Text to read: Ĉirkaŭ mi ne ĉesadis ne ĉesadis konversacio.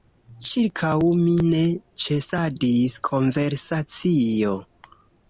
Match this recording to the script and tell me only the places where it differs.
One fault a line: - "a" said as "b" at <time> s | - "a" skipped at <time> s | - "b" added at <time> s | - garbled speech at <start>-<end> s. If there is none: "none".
- "ne ĉesadis" skipped at 3.0 s